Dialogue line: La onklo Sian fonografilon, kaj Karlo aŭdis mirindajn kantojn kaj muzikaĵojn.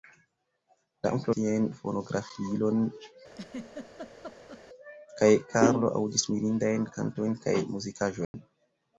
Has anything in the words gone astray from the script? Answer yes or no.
no